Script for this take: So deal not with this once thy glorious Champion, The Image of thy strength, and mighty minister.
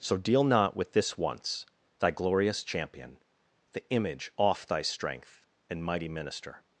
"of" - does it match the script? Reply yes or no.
no